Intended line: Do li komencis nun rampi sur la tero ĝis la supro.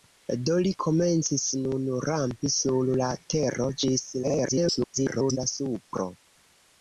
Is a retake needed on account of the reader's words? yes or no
yes